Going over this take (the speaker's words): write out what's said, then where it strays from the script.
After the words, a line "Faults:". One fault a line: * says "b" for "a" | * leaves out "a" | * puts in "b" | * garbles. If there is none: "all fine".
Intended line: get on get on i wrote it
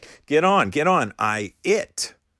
get on get on i it
Faults:
* leaves out "wrote"